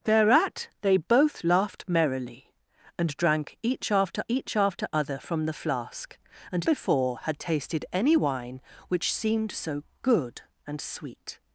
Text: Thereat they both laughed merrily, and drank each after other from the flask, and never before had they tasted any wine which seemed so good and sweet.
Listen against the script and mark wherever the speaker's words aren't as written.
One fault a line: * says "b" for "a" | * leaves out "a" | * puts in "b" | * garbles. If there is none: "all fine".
* puts in "each after"
* leaves out "never"
* leaves out "they"